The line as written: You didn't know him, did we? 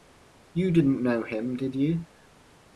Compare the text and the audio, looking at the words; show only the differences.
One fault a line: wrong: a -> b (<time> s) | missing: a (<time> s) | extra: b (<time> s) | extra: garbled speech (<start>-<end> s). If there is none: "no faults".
wrong: we -> you (1.7 s)